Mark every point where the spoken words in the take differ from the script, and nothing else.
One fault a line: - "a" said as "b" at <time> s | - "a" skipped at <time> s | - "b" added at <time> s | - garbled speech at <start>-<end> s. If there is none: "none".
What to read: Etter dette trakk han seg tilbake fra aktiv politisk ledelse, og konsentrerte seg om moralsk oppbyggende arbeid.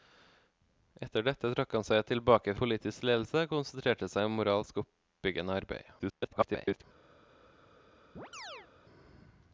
- "fra aktiv" skipped at 2.5 s
- garbled speech at 6.0-6.8 s